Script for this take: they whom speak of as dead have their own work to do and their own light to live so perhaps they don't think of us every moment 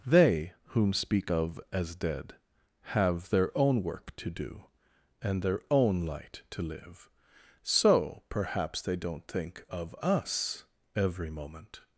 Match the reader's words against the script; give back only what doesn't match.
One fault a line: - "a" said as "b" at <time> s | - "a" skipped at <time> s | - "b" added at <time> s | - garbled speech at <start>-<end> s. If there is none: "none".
none